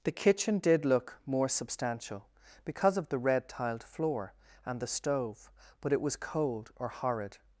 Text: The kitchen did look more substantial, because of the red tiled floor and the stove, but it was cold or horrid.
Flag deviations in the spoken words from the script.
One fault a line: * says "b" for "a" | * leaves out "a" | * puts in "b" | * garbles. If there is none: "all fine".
all fine